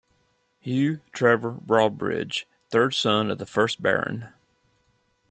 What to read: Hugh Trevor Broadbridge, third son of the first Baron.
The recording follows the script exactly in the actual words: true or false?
true